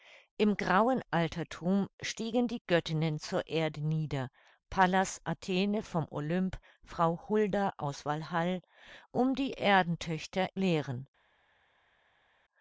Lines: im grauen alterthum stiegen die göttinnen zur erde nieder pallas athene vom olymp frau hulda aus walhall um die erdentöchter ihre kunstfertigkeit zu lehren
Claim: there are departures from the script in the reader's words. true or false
true